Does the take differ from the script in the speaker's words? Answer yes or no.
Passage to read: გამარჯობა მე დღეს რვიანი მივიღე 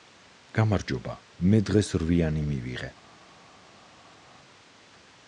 no